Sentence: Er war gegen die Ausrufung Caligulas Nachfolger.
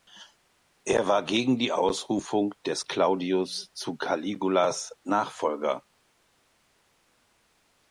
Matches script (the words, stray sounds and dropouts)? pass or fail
fail